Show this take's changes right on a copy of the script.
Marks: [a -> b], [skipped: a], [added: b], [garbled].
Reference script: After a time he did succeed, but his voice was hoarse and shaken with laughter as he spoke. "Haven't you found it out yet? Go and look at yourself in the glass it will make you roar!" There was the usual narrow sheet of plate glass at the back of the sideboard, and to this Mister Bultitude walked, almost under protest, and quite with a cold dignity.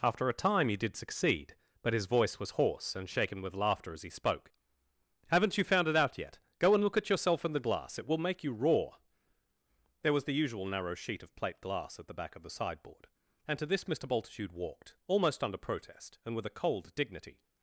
After a time he did succeed, but his voice was hoarse and shaken with laughter as he spoke. "Haven't you found it out yet? Go and look at yourself in the glass it will make you roar!" There was the usual narrow sheet of plate glass at the back of the sideboard, and to this Mister Bultitude walked, almost under protest, and [skipped: quite] with a cold dignity.